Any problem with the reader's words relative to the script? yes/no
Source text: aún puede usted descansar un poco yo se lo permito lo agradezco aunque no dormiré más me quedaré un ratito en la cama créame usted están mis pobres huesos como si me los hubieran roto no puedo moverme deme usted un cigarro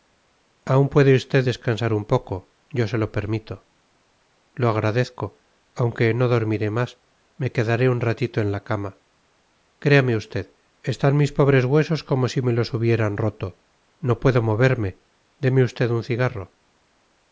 no